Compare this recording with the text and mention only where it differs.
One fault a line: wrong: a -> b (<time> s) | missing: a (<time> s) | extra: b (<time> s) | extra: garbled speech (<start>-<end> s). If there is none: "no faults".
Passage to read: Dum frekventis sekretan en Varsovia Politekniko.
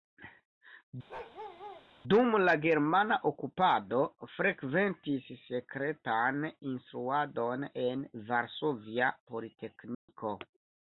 extra: la germana okupado (2.4 s)
extra: instruadon (6.7 s)